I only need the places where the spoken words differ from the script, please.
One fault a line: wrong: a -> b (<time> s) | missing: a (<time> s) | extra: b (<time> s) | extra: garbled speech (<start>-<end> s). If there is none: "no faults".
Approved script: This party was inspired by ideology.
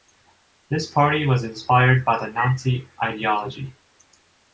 extra: the Nazi (2.2 s)